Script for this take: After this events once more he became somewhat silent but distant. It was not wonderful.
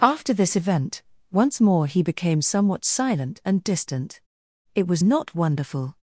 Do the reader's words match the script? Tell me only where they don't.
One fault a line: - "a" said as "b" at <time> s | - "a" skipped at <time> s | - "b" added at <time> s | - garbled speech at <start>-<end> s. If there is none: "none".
- "events" said as "event" at 0.6 s
- "but" said as "and" at 3.5 s